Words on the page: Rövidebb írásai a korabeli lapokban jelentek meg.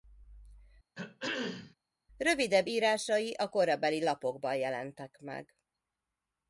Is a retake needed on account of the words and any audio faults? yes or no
yes